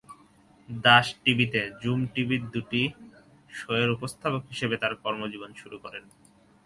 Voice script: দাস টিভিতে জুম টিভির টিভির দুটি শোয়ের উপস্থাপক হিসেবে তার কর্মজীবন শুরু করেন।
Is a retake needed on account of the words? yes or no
yes